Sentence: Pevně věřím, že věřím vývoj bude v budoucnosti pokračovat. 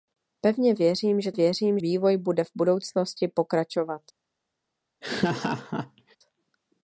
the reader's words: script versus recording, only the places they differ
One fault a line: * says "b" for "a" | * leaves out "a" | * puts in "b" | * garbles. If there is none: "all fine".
all fine